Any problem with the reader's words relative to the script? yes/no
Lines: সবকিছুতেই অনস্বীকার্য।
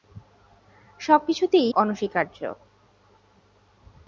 no